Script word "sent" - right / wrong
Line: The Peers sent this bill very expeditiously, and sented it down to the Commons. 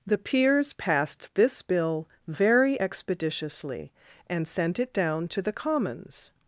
wrong